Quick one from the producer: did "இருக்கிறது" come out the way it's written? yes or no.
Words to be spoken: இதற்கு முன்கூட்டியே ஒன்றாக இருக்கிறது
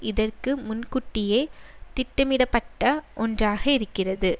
yes